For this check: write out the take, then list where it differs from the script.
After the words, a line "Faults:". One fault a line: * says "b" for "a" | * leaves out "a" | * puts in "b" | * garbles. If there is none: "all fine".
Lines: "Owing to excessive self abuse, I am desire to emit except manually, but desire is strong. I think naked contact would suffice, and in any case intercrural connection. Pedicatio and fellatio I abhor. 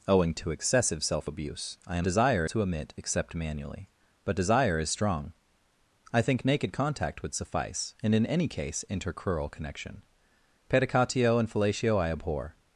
"Owing to excessive self abuse, I am desire to emit except manually, but desire is strong. I think naked contact would suffice, and in any case intercrural connection. Pedicatio and fellatio I abhor.
Faults:
all fine